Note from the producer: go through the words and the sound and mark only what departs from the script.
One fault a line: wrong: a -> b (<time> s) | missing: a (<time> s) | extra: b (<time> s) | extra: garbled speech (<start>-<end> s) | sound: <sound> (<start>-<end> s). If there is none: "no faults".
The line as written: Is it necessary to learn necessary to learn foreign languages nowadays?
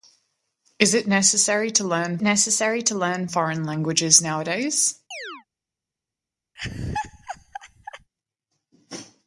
sound: chirp (5.1-5.5 s)
sound: laugh (6.6-8.1 s)